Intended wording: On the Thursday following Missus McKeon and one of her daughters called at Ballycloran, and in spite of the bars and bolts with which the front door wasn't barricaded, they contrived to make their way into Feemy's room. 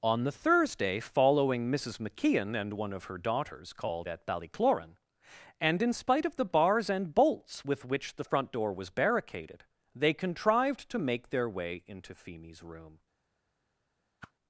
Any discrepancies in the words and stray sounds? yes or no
yes